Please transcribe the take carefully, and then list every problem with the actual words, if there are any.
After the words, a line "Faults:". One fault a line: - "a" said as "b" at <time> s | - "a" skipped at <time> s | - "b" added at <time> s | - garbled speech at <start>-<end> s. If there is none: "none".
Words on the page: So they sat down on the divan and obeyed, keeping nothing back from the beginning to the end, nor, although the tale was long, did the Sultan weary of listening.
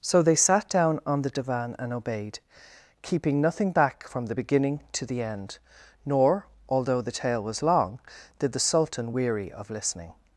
So they sat down on the divan and obeyed, keeping nothing back from the beginning to the end, nor, although the tale was long, did the Sultan weary of listening.
Faults:
none